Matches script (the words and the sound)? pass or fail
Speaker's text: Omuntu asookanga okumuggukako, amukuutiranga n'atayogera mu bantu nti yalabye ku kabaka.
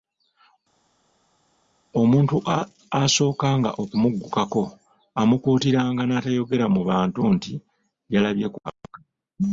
pass